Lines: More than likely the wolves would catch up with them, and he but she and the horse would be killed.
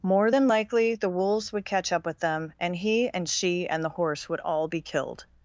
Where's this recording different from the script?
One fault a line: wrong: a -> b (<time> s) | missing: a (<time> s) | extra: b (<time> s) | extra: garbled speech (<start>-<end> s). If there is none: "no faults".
wrong: but -> and (3.1 s)
extra: all (4.4 s)